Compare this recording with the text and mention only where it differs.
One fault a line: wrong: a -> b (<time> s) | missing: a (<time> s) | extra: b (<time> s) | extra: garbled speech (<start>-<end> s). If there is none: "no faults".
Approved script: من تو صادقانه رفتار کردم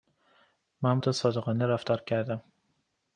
no faults